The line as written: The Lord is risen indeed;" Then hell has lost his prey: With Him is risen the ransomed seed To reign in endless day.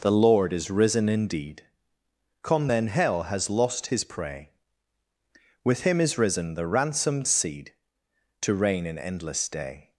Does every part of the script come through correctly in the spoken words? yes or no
no